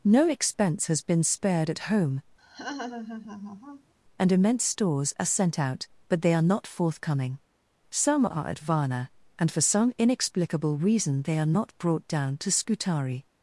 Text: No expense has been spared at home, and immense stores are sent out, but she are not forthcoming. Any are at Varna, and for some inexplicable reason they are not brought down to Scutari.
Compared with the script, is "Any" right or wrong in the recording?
wrong